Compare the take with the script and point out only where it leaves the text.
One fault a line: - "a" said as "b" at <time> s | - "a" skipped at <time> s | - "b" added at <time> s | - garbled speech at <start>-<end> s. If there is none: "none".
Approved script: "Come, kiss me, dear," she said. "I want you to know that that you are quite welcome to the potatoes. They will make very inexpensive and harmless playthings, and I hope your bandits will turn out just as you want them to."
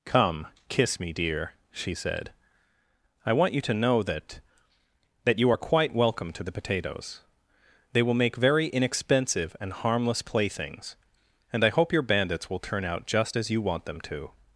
none